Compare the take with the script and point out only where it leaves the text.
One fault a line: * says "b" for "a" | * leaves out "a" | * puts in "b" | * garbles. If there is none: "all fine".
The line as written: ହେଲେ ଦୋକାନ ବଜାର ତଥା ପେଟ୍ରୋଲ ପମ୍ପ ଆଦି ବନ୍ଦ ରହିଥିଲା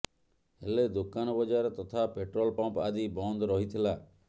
all fine